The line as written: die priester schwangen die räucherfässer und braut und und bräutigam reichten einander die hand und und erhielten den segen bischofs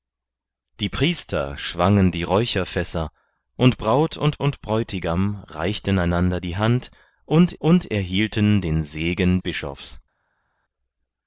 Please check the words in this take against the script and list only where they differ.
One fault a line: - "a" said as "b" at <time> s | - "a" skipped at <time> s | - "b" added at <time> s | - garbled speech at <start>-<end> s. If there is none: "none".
none